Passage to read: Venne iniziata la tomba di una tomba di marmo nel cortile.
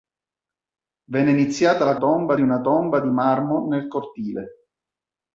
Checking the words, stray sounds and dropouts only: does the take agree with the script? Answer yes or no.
yes